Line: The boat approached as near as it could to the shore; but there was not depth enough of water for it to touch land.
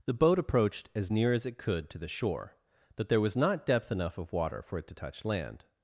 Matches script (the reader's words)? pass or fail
pass